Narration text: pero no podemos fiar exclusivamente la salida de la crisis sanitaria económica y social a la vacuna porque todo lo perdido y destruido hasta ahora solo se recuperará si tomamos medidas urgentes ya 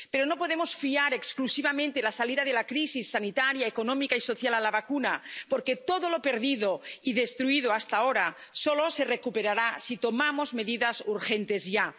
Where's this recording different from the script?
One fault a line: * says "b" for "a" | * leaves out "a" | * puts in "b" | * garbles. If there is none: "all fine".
all fine